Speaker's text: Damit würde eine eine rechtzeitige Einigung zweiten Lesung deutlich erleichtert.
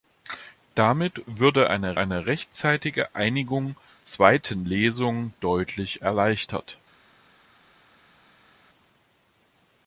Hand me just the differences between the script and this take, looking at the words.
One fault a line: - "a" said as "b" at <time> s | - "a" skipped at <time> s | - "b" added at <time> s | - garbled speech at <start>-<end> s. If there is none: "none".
none